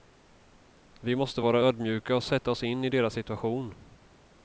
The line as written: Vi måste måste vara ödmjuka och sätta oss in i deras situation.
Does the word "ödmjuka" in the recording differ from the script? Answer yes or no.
no